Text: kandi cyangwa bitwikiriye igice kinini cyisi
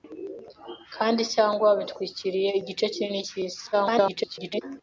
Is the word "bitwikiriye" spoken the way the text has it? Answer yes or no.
yes